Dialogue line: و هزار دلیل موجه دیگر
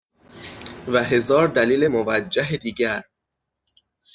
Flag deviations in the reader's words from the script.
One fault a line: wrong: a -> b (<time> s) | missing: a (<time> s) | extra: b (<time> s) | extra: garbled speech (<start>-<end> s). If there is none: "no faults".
no faults